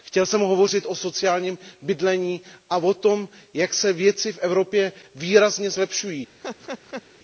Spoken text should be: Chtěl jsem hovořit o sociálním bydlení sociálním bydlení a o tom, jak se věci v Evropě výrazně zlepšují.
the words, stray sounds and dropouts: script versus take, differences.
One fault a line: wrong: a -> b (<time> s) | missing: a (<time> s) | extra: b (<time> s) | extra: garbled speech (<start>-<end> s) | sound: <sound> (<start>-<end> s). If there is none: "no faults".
missing: sociálním bydlení (2.4 s)
sound: laugh (6.4-7.0 s)